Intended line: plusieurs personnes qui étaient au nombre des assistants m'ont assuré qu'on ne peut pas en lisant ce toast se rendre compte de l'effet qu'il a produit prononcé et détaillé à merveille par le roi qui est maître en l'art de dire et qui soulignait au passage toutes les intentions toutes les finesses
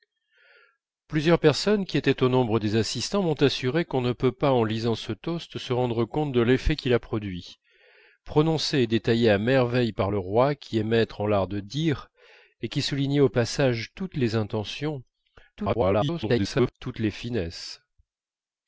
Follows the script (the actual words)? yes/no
no